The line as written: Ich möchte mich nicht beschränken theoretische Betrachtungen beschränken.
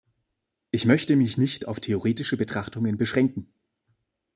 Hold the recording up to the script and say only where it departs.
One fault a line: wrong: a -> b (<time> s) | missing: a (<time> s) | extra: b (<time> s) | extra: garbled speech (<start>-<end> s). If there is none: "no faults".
wrong: beschränken -> auf (1.7 s)